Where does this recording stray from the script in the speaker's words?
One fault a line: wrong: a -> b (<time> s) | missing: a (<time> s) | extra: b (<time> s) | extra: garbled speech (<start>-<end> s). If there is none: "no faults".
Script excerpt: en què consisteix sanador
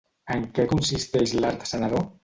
extra: l'art (1.4 s)